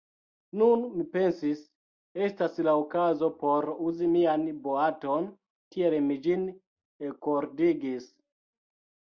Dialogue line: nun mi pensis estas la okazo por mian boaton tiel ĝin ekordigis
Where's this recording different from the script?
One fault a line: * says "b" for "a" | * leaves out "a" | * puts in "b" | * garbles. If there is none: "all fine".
* puts in "uzi"
* puts in "mi"